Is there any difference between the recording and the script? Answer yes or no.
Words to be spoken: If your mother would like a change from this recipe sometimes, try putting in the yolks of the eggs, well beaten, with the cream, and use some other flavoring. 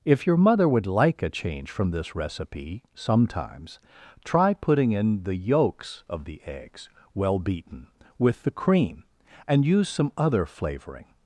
no